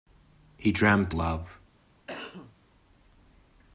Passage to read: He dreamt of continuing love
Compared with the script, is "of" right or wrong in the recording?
wrong